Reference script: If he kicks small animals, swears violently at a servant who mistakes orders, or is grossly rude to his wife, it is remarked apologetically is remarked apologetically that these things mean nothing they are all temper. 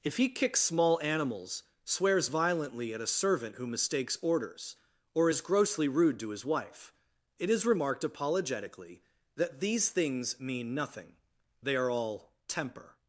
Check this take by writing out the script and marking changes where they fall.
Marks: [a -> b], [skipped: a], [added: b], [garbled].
If he kicks small animals, swears violently at a servant who mistakes orders, or is grossly rude to his wife, it is remarked apologetically [skipped: is remarked apologetically] that these things mean nothing they are all temper.